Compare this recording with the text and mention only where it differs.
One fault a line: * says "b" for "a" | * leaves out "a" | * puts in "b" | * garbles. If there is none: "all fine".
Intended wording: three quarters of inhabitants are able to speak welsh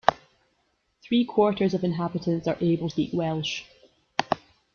* leaves out "to"